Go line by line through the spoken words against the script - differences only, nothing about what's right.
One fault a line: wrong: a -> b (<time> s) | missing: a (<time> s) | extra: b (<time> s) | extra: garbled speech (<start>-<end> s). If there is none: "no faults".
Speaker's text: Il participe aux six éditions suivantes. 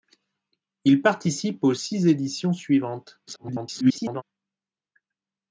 extra: garbled speech (3.3-4.2 s)